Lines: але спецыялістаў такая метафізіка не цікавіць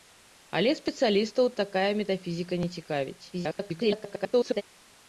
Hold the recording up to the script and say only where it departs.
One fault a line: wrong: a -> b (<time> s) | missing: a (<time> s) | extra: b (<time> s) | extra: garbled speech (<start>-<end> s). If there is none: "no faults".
extra: garbled speech (3.3-4.6 s)